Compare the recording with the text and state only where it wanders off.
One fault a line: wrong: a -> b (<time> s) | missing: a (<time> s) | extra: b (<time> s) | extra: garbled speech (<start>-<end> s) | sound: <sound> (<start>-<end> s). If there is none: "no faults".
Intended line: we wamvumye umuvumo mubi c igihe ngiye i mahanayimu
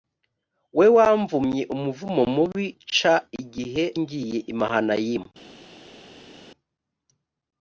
no faults